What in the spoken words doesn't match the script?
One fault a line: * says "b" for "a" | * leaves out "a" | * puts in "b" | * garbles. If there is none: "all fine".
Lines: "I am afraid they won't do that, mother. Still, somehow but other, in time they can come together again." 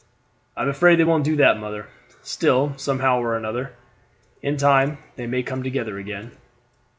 * says "or" for "but"
* says "may" for "can"